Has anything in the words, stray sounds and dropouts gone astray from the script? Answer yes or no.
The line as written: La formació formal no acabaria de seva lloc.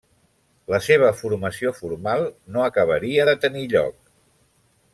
yes